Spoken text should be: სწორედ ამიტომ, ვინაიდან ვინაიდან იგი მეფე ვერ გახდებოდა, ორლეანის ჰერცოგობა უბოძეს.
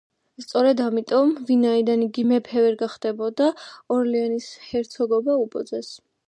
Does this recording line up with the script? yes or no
no